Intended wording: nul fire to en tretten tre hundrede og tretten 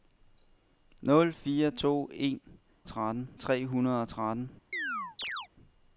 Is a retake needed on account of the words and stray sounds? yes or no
yes